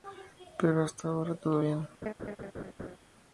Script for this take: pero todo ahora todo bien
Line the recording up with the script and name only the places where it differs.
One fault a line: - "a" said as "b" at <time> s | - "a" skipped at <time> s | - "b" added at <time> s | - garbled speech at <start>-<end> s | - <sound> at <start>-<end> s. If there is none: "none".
- "todo" said as "hasta" at 0.8 s
- laugh at 2.0-3.0 s